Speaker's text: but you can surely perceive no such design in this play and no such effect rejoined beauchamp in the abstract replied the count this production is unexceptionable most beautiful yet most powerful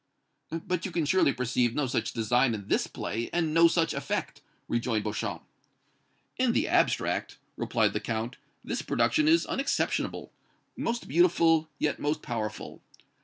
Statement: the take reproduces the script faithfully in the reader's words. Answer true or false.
true